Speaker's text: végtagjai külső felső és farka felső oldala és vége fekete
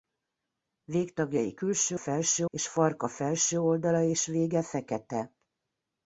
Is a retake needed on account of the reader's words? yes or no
no